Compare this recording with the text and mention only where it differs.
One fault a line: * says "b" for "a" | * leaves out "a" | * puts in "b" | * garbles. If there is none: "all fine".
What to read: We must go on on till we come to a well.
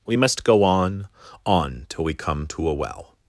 all fine